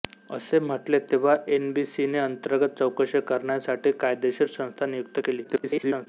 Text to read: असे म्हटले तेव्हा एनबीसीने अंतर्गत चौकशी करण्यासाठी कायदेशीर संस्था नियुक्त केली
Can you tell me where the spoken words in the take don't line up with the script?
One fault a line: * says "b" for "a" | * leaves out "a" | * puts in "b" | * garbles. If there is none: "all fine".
* garbles